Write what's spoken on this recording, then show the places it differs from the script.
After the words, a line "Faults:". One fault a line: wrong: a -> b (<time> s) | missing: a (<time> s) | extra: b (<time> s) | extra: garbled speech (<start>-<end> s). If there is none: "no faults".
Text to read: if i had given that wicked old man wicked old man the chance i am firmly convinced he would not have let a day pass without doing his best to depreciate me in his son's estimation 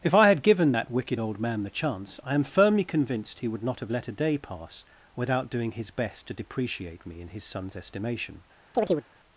if i had given that wicked old man the chance i am firmly convinced he would not have let a day pass without doing his best to depreciate me in his son's estimation
Faults:
missing: wicked old man (1.6 s)